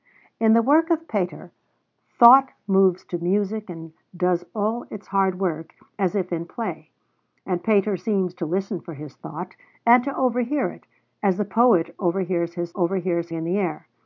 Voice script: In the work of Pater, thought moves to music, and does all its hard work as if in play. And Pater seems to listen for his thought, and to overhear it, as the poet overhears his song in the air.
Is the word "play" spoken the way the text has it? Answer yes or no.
yes